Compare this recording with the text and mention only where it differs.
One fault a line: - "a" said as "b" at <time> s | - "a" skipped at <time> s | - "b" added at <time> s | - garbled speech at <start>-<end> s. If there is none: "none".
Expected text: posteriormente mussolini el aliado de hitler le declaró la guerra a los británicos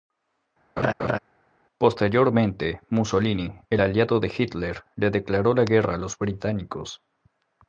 none